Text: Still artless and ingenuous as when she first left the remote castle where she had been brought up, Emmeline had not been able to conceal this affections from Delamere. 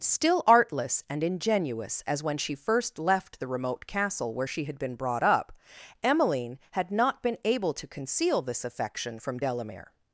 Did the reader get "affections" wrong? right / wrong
wrong